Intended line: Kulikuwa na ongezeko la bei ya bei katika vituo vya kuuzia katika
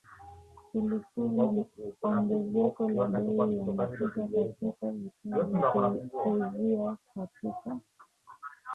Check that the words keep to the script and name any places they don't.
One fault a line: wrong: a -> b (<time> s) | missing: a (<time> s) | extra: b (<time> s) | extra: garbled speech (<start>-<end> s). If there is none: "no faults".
wrong: bei -> mafuta (3.6 s)